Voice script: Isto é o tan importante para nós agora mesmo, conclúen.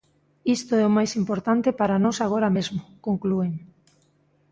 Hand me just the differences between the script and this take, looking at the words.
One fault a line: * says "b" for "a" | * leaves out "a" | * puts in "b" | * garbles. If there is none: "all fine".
* says "máis" for "tan"